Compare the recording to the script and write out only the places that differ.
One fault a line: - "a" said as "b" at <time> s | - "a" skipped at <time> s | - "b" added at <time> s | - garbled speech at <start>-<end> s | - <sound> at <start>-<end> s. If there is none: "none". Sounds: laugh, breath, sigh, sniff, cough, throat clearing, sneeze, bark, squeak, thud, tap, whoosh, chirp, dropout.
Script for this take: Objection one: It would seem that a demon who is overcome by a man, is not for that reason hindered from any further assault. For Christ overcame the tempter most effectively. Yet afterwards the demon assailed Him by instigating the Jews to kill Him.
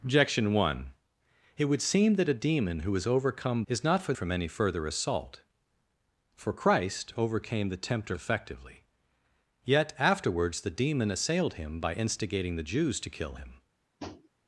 - "by a man" skipped at 3.6 s
- "that reason hindered" skipped at 4.1 s
- "most" skipped at 8.2 s
- tap at 14.0-14.3 s